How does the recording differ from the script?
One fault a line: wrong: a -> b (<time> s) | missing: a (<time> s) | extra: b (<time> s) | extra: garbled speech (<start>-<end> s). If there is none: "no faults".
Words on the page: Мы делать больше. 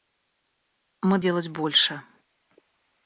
no faults